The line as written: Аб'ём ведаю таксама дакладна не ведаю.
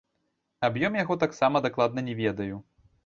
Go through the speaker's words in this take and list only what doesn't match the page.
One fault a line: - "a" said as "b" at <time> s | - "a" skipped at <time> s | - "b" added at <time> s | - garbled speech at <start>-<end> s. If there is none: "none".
- "ведаю" said as "яго" at 1.0 s